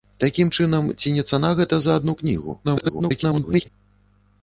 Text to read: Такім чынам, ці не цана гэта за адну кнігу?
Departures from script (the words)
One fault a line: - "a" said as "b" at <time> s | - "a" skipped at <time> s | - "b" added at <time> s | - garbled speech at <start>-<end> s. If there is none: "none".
- garbled speech at 2.6-3.7 s